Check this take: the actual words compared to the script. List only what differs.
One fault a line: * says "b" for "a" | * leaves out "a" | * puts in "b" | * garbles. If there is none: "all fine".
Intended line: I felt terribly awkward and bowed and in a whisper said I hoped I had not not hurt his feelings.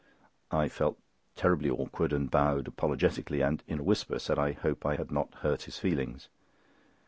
* puts in "apologetically"
* leaves out "not"